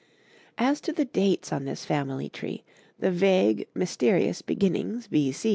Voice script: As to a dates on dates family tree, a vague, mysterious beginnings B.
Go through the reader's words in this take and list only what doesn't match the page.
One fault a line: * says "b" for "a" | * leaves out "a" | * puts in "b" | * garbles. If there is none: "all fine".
* says "the" for "a"
* says "this" for "dates"
* says "the" for "a"